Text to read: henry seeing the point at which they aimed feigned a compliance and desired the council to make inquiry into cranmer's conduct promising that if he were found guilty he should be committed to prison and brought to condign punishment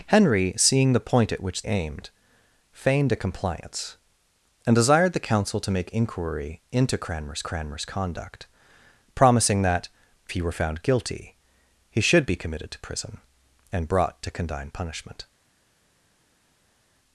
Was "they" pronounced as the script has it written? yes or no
no